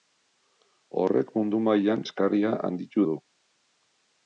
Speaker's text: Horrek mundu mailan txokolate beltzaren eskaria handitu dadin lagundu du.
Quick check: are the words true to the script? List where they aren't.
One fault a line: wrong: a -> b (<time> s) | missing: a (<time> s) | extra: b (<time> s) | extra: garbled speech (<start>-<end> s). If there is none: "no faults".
missing: txokolate beltzaren (2.0 s)
missing: dadin lagundu (3.0 s)